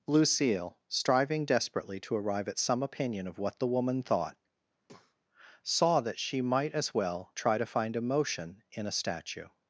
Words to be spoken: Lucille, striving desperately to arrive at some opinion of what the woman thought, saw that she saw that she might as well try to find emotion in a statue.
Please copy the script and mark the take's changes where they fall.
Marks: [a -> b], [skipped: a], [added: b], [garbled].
Lucille, striving desperately to arrive at some opinion of what the woman thought, saw that she [skipped: saw that she] might as well try to find emotion in a statue.